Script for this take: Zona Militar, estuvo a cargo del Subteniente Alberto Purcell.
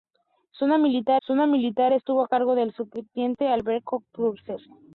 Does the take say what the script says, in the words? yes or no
no